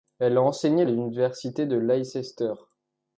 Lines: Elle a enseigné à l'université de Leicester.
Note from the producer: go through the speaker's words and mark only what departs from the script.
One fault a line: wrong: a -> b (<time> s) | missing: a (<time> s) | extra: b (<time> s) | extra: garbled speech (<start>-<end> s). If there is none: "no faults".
no faults